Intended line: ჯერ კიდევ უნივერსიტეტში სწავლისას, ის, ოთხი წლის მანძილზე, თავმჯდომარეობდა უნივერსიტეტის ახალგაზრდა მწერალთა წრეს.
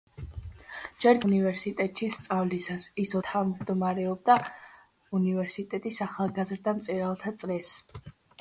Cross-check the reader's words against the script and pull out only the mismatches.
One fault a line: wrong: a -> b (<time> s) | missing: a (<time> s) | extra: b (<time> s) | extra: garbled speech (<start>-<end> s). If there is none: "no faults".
missing: კიდევ (1.2 s)
missing: ოთხი წლის მანძილზე (3.2 s)